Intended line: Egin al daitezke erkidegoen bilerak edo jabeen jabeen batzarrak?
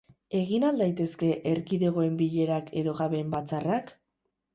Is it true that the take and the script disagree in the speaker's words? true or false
true